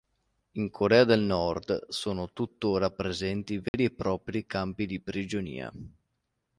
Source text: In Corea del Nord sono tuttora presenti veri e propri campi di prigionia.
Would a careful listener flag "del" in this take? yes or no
no